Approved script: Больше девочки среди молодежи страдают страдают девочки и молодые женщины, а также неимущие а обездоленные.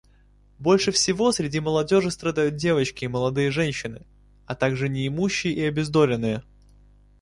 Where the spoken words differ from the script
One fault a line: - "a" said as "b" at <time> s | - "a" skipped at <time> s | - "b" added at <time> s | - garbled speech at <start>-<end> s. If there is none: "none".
- "девочки" said as "всего" at 0.9 s
- "страдают" skipped at 2.5 s
- "а" said as "и" at 5.5 s